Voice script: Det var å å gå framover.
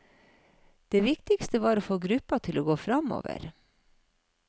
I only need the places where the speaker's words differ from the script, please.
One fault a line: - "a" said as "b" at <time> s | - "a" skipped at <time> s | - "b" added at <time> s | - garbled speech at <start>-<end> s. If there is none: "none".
- "viktigste" added at 1.1 s
- "få gruppa til" added at 1.9 s